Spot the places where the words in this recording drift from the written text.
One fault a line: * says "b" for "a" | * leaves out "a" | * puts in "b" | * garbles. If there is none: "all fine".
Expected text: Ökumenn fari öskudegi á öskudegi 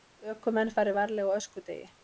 * says "varlega" for "öskudegi"